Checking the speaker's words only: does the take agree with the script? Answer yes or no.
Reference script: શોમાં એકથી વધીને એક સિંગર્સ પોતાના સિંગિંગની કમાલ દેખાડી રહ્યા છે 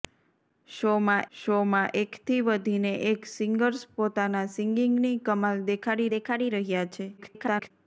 no